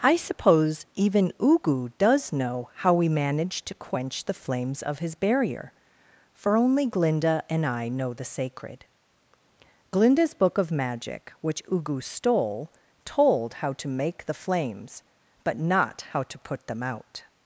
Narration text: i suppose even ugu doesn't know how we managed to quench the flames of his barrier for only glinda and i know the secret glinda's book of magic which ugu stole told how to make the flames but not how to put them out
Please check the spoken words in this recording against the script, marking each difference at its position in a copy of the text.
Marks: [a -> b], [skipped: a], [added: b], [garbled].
i suppose even ugu [doesn't -> does] know how we managed to quench the flames of his barrier for only glinda and i know the [secret -> sacred] glinda's book of magic which ugu stole told how to make the flames but not how to put them out